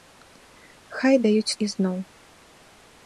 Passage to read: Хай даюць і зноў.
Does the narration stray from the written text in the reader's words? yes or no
no